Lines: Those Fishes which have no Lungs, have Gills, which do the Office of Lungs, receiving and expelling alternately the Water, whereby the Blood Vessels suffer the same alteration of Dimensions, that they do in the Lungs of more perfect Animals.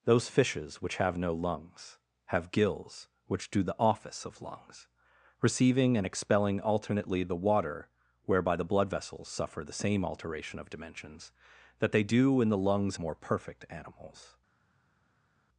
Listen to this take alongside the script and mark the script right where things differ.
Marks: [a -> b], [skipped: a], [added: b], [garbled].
Those Fishes which have no Lungs, have Gills, which do the Office of Lungs, receiving and expelling alternately the Water, whereby the Blood Vessels suffer the same alteration of Dimensions, that they do in the Lungs [skipped: of] more perfect Animals.